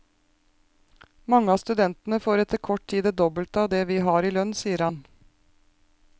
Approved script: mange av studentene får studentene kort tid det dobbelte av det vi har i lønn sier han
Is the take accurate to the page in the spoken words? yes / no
no